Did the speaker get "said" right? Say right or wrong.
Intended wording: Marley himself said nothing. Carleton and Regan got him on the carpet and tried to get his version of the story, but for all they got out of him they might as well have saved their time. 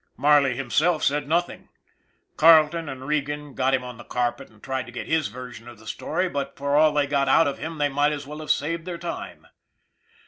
right